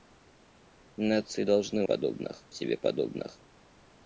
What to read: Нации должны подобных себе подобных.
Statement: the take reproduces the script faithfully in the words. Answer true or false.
true